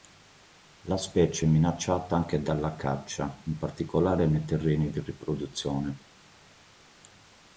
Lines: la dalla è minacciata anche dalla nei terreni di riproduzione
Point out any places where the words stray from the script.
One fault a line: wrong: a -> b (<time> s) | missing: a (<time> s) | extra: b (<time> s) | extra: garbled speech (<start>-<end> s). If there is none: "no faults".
wrong: dalla -> specie (1.0 s)
extra: caccia in particolare (2.8 s)